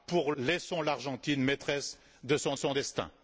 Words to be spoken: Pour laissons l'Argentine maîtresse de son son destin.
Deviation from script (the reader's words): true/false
false